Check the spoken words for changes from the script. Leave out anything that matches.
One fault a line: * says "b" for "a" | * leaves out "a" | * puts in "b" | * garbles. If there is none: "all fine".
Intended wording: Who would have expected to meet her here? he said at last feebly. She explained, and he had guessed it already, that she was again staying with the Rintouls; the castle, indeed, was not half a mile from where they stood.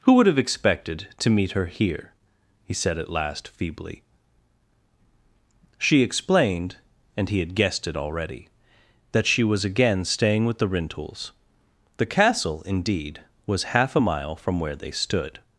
* leaves out "not"